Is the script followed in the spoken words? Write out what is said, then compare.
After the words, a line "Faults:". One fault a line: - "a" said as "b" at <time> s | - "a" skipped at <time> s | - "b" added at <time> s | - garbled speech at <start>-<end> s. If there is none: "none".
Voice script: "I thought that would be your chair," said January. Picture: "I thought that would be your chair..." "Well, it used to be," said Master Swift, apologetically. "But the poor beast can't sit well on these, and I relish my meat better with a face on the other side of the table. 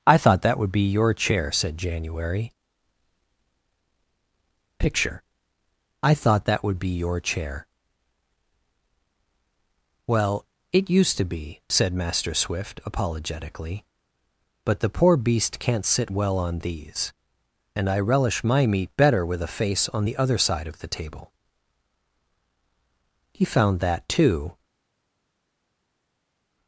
"I thought that would be your chair," said January. Picture: "I thought that would be your chair..." "Well, it used to be," said Master Swift, apologetically. "But the poor beast can't sit well on these, and I relish my meat better with a face on the other side of the table. He found that too
Faults:
- "He found that too" added at 23.3 s